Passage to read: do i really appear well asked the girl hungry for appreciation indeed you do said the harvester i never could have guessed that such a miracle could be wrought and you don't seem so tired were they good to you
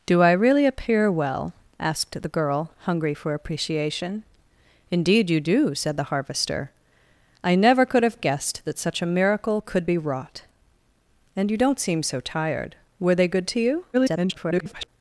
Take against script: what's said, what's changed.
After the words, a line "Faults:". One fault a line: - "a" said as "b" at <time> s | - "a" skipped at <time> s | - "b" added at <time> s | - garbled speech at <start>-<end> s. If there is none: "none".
do i really appear well asked the girl hungry for appreciation indeed you do said the harvester i never could have guessed that such a miracle could be wrought and you don't seem so tired were they good to you [garbled]
Faults:
- garbled speech at 13.9-14.9 s